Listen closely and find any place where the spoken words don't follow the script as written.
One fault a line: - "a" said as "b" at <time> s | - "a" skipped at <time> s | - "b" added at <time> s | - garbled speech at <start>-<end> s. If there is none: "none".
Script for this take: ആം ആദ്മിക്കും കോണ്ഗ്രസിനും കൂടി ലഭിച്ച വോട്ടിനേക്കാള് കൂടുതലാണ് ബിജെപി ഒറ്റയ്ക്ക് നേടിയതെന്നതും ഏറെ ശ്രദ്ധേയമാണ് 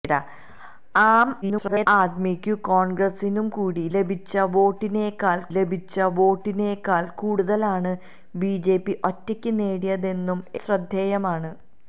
- garbled speech at 1.4-1.9 s
- "ലഭിച്ച വോട്ടിനേക്കാള്" added at 5.5 s
- "ഏറെ" skipped at 10.4 s